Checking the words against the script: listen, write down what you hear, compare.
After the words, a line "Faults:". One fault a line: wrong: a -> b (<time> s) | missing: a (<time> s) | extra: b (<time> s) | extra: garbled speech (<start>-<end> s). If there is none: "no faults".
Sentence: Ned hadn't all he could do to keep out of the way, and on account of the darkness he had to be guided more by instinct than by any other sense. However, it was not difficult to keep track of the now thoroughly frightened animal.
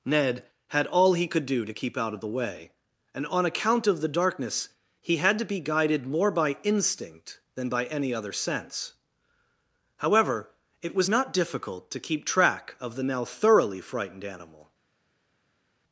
Ned had all he could do to keep out of the way, and on account of the darkness he had to be guided more by instinct than by any other sense. However, it was not difficult to keep track of the now thoroughly frightened animal.
Faults:
wrong: hadn't -> had (0.7 s)